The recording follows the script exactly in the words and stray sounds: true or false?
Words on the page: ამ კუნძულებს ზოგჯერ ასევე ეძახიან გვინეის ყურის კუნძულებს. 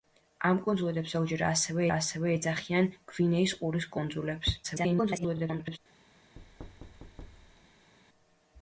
false